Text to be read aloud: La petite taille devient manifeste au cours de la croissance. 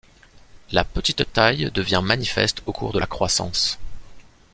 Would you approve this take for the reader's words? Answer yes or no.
yes